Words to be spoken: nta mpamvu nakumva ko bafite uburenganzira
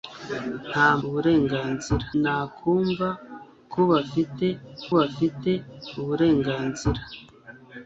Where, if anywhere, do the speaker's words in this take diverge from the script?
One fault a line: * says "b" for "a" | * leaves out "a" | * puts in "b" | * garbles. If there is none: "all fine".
* says "uburenganzira" for "mpamvu"
* puts in "bafite"